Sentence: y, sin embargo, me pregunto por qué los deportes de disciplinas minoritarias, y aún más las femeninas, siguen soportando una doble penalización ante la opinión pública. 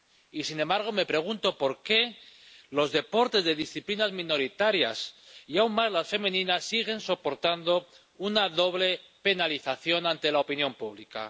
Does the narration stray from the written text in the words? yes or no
no